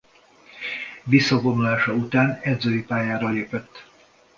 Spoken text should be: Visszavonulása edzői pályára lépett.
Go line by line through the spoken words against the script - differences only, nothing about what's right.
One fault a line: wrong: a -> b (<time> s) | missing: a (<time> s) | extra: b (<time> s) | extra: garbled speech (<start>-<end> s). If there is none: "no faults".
extra: után (1.9 s)